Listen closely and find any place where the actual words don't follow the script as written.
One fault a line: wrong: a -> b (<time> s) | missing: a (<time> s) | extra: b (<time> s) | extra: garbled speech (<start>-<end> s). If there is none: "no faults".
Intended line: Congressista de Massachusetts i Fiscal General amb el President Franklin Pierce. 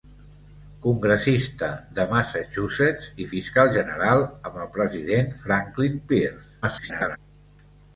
extra: garbled speech (6.6-7.2 s)